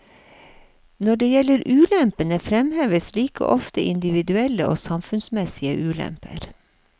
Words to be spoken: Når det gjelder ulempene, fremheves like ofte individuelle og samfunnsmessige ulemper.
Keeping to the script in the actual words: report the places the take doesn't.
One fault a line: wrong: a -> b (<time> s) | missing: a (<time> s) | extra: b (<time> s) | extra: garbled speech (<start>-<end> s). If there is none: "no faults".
no faults